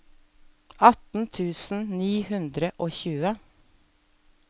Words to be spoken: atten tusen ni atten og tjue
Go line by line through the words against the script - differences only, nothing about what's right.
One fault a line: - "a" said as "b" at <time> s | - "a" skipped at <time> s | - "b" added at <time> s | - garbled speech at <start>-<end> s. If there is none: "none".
- "atten" said as "hundre" at 2.3 s